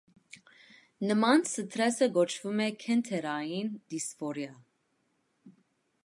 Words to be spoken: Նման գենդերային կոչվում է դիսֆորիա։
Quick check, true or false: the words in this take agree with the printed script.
false